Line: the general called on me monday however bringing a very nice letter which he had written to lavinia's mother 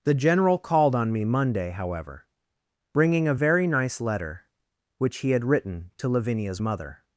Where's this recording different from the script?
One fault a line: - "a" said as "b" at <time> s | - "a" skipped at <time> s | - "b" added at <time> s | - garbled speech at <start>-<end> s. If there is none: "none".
none